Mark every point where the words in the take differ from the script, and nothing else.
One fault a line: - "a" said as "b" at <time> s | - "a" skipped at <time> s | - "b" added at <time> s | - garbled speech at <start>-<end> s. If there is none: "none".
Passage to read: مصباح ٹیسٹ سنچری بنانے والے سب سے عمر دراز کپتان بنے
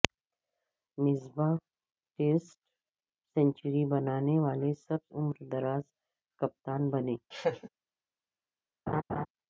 - "سے" skipped at 5.0 s